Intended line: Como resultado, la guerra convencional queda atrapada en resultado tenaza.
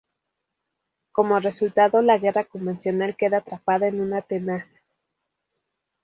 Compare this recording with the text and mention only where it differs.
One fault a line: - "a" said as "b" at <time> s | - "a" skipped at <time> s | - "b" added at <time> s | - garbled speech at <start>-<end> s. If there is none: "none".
- "resultado" said as "una" at 4.0 s